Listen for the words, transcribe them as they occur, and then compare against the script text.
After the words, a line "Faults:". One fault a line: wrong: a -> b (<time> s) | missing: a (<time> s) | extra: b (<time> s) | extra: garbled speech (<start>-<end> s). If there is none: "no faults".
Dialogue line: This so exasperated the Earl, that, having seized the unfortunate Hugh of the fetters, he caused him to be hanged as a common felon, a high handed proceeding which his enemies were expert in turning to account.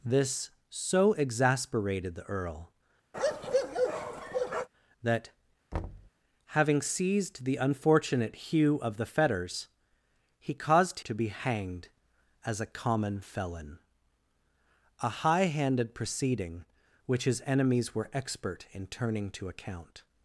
This so exasperated the Earl, that, having seized the unfortunate Hugh of the fetters, he caused to be hanged as a common felon, a high handed proceeding which his enemies were expert in turning to account.
Faults:
missing: him (11.0 s)